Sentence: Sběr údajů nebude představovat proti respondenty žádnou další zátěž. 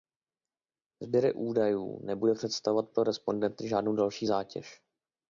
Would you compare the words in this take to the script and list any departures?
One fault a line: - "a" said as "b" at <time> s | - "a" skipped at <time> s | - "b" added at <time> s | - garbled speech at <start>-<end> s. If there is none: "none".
- "proti" said as "pro" at 2.9 s